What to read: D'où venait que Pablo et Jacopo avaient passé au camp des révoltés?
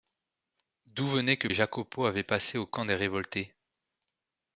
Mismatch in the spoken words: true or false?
true